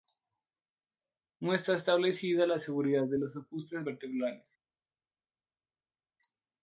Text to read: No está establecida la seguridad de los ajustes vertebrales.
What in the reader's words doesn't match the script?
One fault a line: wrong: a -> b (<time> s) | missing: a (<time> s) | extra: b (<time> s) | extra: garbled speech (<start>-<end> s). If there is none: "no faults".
no faults